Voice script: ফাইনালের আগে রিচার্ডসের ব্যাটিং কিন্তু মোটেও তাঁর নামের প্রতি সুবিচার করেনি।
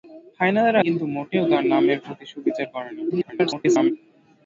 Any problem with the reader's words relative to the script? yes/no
yes